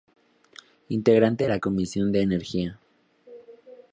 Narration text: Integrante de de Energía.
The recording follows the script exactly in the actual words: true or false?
false